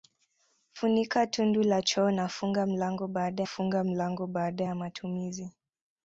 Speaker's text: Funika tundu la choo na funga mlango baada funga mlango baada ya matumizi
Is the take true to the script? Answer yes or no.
yes